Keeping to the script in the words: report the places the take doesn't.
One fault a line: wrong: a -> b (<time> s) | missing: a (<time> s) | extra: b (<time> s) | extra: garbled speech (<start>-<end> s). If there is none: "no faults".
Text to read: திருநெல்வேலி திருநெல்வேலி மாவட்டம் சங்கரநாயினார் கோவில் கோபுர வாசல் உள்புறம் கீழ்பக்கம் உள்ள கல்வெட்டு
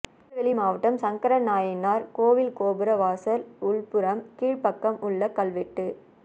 missing: திருநெல்வேலி (0.5 s)